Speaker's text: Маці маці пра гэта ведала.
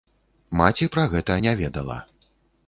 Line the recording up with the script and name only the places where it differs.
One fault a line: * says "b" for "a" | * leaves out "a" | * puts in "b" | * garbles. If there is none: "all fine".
* leaves out "маці"
* puts in "не"